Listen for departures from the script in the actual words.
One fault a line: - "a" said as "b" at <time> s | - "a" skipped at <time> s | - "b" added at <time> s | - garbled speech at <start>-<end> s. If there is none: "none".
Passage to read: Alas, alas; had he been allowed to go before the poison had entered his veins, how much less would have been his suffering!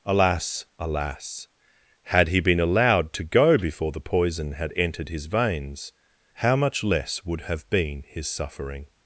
none